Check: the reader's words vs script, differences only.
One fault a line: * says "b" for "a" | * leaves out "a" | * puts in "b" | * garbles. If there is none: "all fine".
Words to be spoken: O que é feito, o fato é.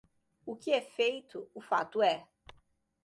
all fine